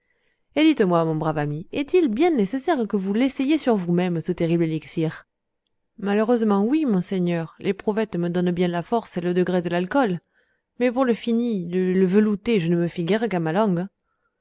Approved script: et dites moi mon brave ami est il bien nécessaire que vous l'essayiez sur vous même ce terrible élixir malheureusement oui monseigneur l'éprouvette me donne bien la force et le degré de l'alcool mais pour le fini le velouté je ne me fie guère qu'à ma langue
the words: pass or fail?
pass